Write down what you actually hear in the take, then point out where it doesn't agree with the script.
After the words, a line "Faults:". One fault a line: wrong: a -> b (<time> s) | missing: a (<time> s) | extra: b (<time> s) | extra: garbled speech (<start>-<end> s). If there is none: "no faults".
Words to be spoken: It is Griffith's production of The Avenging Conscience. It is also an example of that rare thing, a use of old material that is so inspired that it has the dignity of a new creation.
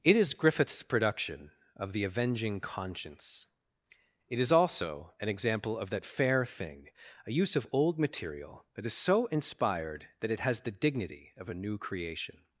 It is Griffith's production of The Avenging Conscience. It is also an example of that fair thing, a use of old material that is so inspired that it has the dignity of a new creation.
Faults:
wrong: rare -> fair (6.0 s)